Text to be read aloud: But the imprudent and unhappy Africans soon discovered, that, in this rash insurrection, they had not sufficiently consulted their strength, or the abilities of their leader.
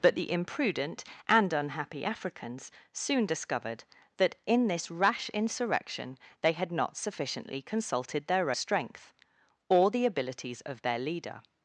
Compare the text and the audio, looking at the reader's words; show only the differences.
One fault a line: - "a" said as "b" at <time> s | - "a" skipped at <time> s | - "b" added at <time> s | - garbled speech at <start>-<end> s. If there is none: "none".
none